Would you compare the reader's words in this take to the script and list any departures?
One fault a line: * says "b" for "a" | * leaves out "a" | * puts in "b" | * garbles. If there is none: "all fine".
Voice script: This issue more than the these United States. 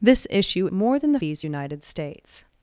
all fine